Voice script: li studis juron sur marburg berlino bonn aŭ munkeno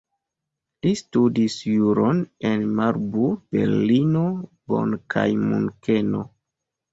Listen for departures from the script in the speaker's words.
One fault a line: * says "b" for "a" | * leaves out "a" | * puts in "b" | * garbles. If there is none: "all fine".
* says "en" for "sur"
* says "kaj" for "aŭ"